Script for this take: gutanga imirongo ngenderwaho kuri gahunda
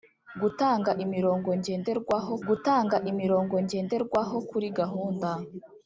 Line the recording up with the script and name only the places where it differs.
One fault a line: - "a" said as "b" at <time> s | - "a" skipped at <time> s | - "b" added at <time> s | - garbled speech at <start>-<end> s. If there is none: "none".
- "gutanga imirongo ngenderwaho" added at 2.5 s